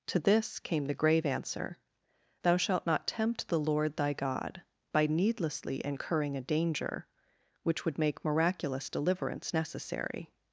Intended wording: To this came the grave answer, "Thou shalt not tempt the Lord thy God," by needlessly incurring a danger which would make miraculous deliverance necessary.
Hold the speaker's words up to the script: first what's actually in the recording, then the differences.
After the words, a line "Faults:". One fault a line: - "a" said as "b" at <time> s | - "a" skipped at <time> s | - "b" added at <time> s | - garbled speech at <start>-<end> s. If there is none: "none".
To this came the grave answer, "Thou shalt not tempt the Lord thy God," by needlessly incurring a danger which would make miraculous deliverance necessary.
Faults:
none